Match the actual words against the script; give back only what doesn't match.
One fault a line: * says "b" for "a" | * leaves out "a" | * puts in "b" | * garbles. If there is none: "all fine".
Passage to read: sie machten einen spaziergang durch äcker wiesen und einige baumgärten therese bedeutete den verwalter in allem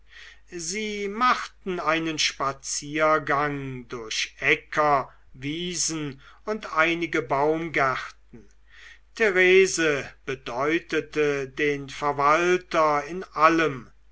all fine